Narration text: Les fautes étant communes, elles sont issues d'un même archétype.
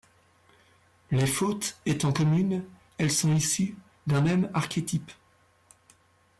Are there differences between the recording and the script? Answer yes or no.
no